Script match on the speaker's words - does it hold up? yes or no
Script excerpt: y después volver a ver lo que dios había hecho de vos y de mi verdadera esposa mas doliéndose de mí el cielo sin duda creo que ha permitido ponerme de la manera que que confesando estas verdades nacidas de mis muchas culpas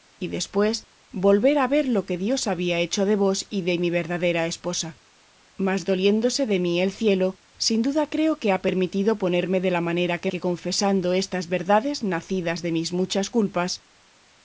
yes